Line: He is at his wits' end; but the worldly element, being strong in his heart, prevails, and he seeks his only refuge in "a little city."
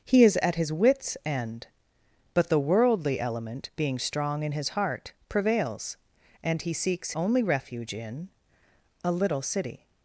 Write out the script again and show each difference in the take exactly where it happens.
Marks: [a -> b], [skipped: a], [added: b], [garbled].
He is at his wits' end; but the worldly element, being strong in his heart, prevails, and he seeks [skipped: his] only refuge in "a little city."